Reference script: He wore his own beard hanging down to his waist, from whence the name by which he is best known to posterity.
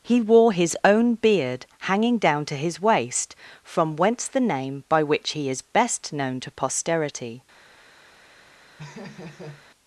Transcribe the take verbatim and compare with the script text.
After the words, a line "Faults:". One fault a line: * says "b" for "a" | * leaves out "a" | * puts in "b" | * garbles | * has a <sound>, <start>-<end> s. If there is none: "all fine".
He wore his own beard hanging down to his waist, from whence the name by which he is best known to posterity.
Faults:
* has a laugh, 8.8-9.7 s